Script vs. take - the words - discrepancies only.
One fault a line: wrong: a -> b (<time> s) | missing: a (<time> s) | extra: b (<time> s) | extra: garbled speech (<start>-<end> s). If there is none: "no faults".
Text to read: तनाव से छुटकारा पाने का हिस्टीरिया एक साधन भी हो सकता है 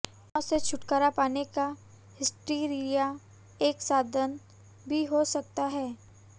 no faults